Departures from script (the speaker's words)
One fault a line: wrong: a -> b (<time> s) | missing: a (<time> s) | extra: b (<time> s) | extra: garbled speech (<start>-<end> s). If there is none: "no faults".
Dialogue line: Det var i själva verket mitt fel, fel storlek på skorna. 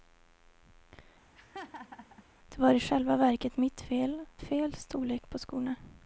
no faults